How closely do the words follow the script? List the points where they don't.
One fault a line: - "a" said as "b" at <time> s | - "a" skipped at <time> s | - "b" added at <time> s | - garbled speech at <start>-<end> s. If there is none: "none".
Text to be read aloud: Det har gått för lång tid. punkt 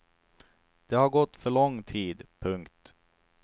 none